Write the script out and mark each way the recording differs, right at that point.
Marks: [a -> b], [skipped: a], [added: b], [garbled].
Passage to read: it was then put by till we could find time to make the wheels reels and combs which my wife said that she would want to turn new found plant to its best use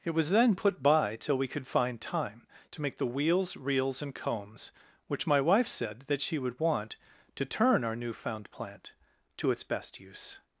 it was then put by till we could find time to make the wheels reels and combs which my wife said that she would want to turn [added: our] new found plant to its best use